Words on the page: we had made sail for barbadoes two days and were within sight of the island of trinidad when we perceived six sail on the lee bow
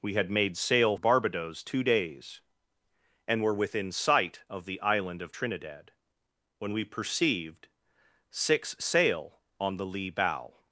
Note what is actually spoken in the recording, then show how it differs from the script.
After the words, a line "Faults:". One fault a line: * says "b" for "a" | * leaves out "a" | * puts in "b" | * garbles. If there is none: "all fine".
we had made sail barbadoes two days and were within sight of the island of trinidad when we perceived six sail on the lee bow
Faults:
* leaves out "for"